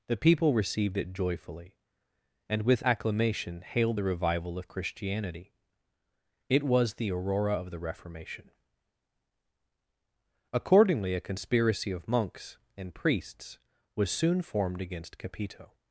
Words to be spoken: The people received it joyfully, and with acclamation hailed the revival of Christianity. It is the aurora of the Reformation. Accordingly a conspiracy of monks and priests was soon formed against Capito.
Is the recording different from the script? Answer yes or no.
yes